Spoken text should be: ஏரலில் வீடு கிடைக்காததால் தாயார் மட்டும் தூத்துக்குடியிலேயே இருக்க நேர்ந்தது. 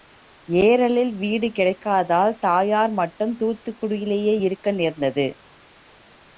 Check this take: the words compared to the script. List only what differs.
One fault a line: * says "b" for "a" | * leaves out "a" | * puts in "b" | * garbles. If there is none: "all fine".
all fine